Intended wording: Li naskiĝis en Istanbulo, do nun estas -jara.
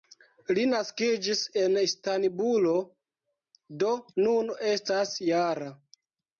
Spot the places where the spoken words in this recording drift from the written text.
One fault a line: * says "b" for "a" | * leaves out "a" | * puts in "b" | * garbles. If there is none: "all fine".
all fine